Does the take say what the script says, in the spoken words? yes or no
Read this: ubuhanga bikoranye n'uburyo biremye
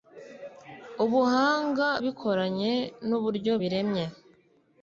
yes